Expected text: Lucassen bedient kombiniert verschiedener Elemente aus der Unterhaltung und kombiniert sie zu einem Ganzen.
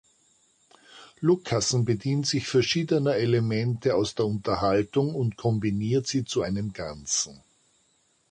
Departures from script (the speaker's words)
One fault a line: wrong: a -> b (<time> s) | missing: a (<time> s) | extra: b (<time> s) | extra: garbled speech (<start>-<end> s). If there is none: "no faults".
wrong: kombiniert -> sich (2.2 s)